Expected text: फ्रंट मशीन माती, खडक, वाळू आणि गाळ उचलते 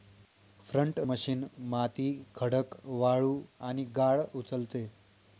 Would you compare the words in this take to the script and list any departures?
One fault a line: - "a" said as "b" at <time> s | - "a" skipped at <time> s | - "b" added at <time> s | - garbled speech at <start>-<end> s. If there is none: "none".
none